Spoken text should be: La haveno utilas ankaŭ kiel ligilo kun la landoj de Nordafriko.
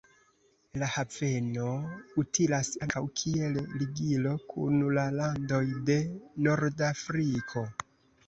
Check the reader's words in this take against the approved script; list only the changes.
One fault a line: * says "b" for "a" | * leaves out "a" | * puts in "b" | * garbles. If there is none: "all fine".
all fine